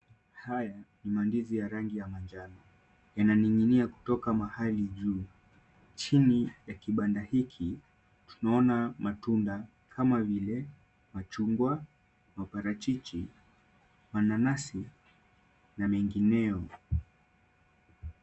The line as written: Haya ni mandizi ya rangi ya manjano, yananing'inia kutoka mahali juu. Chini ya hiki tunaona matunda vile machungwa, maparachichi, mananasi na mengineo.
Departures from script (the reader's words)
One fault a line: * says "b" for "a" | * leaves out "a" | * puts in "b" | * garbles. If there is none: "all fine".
* puts in "kibanda"
* puts in "kama"